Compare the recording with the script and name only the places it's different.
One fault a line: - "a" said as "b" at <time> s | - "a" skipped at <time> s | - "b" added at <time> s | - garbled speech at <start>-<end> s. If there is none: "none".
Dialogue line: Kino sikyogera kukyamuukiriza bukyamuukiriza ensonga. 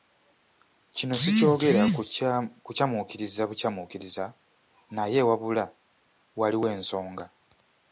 - "naye wabula waliwo" added at 5.0 s